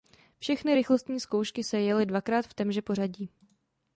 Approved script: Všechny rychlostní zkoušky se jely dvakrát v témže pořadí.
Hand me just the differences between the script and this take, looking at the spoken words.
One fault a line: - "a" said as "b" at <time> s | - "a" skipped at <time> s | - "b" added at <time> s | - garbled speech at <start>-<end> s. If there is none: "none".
none